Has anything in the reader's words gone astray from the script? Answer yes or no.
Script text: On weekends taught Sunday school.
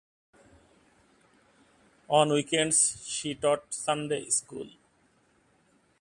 yes